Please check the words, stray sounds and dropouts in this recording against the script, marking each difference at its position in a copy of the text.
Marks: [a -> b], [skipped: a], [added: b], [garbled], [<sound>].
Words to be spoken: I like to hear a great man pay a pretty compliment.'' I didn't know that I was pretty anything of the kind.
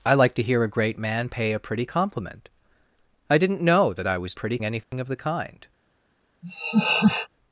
I like to hear a great man pay a pretty compliment.'' I didn't know that I was pretty anything [dropout] of the kind. [laugh]